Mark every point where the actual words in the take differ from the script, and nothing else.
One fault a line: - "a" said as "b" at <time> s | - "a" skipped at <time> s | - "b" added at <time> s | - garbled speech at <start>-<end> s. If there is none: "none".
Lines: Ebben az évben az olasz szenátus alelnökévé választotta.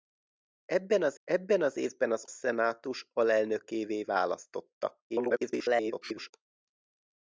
- "ebben az" added at 1.2 s
- "olasz" skipped at 2.2 s
- garbled speech at 5.1-6.3 s